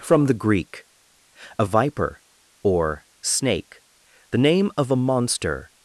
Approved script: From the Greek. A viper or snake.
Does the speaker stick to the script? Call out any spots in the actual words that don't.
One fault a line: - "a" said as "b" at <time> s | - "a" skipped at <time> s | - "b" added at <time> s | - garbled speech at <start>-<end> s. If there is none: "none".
- "The name of a monster" added at 4.3 s